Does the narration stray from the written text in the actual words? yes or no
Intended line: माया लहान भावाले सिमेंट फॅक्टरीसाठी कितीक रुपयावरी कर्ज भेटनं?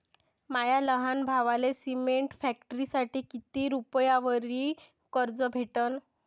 no